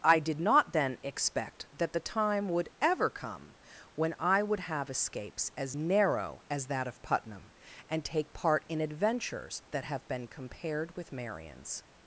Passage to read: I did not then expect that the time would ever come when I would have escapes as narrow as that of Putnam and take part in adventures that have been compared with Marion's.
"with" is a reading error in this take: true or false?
false